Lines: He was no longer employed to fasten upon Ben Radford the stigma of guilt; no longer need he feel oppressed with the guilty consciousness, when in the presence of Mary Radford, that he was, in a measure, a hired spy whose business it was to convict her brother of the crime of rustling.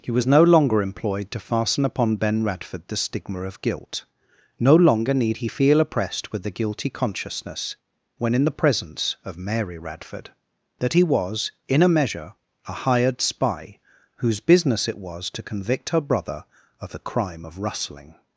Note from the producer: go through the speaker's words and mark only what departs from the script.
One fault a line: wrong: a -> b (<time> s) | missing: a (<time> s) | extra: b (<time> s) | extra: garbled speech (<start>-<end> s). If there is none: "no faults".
no faults